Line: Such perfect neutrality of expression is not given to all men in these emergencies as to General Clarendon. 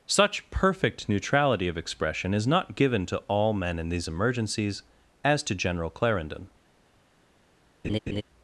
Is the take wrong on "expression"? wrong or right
right